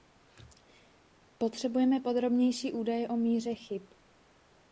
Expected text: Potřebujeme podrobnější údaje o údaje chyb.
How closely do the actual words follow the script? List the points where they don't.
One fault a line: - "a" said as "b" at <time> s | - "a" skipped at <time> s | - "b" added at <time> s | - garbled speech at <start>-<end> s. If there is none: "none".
- "údaje" said as "míře" at 3.2 s